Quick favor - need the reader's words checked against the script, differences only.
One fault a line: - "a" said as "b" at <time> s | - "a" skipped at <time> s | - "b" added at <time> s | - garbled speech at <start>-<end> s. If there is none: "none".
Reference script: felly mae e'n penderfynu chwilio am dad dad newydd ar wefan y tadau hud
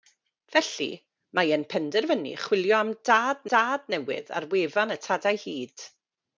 none